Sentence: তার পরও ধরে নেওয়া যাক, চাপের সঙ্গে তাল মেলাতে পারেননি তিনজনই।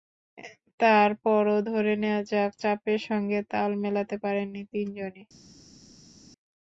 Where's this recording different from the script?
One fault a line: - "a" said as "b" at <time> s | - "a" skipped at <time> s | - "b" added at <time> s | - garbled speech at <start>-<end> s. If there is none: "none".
none